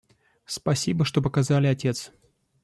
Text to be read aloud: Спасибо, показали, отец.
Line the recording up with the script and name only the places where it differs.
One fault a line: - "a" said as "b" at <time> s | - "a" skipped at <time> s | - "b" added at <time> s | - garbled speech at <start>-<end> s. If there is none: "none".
- "что" added at 1.1 s